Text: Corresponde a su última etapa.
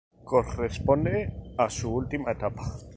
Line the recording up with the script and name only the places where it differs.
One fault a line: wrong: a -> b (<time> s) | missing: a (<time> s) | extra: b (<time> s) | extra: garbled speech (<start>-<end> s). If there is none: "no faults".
no faults